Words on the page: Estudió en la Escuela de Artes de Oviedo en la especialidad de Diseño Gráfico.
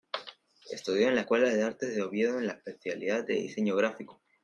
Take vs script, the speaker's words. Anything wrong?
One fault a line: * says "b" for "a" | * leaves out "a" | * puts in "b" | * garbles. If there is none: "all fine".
all fine